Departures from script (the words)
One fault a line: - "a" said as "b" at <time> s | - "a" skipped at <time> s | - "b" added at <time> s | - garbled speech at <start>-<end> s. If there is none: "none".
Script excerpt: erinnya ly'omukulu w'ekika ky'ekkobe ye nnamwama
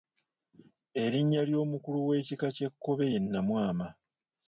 none